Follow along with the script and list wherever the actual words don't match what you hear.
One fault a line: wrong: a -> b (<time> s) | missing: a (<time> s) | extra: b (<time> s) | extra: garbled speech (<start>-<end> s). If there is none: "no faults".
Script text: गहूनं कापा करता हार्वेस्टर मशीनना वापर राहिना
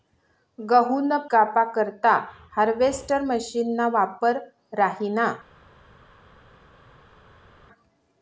no faults